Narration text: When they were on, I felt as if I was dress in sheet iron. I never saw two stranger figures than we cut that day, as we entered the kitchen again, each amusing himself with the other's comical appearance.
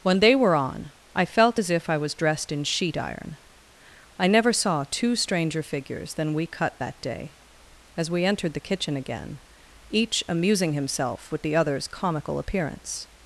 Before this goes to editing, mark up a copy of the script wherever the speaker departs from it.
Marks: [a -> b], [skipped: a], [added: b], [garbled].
When they were on, I felt as if I was [dress -> dressed] in sheet iron. I never saw two stranger figures than we cut that day, as we entered the kitchen again, each amusing himself with the other's comical appearance.